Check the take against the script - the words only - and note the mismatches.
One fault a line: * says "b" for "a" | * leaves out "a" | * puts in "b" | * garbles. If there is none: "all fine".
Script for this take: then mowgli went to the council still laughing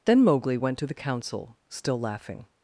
all fine